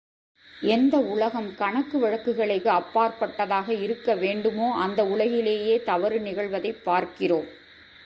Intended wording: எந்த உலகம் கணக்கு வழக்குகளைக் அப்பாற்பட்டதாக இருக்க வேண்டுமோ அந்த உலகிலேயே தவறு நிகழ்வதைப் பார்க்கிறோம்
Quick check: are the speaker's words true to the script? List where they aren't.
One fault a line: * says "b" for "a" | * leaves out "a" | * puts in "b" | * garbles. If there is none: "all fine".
all fine